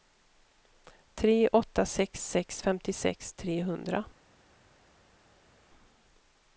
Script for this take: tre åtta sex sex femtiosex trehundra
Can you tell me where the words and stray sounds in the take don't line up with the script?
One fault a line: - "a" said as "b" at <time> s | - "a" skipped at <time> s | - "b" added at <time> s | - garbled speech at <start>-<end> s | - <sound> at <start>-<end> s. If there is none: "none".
none